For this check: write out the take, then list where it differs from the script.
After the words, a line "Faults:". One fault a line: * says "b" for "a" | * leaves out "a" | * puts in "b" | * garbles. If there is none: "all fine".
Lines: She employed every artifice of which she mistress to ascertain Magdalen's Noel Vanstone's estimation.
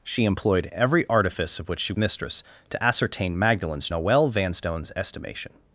She employed every artifice of which she mistress to ascertain Magdalen's Noel Vanstone's estimation.
Faults:
all fine